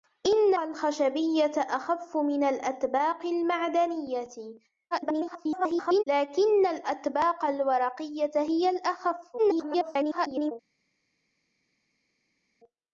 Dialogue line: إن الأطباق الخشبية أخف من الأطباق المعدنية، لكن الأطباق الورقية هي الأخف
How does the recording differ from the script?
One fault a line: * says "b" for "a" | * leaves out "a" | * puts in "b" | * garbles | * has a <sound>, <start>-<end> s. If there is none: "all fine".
* leaves out "الأطباق"
* garbles
* garbles